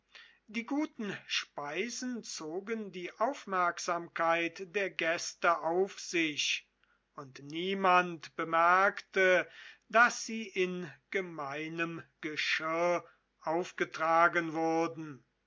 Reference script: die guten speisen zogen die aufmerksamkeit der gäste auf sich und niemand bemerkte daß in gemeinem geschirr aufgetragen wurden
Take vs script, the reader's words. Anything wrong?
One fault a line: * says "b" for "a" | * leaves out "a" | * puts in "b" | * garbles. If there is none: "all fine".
* puts in "sie"